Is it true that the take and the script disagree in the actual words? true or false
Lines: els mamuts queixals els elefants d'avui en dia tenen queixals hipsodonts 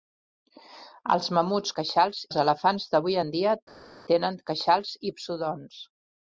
false